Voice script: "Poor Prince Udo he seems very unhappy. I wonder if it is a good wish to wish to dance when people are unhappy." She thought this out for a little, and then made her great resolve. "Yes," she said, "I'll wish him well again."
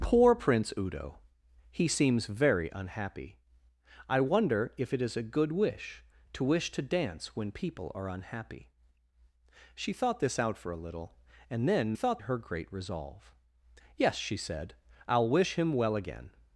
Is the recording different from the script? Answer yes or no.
yes